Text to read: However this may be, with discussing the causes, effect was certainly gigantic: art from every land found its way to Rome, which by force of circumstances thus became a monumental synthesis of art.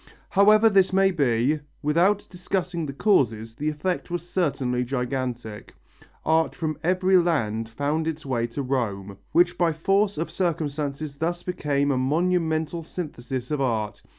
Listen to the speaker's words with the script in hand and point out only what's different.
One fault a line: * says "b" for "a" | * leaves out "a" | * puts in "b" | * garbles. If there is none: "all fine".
* says "without" for "with"
* puts in "the"